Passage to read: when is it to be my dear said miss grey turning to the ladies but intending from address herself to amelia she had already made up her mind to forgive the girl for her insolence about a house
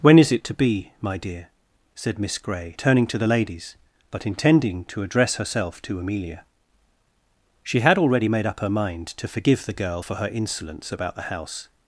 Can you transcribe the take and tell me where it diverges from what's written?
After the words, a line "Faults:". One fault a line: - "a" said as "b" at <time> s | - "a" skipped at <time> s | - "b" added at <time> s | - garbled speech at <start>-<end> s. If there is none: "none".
when is it to be my dear said miss grey turning to the ladies but intending to address herself to amelia she had already made up her mind to forgive the girl for her insolence about the house
Faults:
- "from" said as "to" at 4.8 s
- "a" said as "the" at 11.1 s